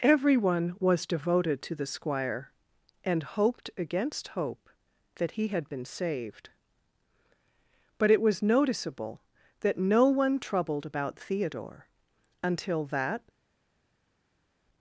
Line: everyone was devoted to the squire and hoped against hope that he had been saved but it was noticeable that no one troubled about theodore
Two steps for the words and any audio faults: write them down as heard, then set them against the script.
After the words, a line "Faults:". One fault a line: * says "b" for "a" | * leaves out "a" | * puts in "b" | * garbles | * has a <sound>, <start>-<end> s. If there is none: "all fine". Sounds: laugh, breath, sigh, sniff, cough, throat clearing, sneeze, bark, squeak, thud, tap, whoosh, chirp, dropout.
everyone was devoted to the squire and hoped against hope that he had been saved but it was noticeable that no one troubled about theodore until that
Faults:
* puts in "until that"